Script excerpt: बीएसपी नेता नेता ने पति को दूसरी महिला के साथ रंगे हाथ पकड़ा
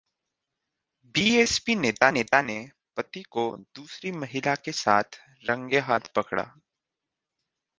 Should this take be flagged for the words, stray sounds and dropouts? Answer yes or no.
no